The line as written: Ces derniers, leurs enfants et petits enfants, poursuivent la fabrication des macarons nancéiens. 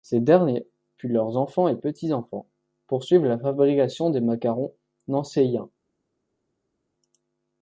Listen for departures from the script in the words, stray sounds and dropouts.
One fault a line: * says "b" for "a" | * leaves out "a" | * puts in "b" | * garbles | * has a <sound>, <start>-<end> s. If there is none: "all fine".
* puts in "puis"